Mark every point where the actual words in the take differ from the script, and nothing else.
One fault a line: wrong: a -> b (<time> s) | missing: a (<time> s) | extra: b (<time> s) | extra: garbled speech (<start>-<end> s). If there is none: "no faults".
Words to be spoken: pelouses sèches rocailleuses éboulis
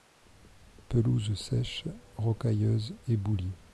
no faults